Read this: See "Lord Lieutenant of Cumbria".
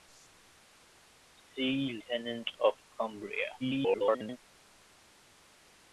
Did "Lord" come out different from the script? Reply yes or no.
yes